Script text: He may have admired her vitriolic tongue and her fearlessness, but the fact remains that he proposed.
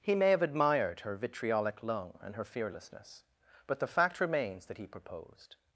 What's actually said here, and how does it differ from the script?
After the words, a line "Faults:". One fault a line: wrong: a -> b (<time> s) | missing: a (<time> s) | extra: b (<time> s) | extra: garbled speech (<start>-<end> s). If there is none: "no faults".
He may have admired her vitriolic lung and her fearlessness, but the fact remains that he proposed.
Faults:
wrong: tongue -> lung (1.8 s)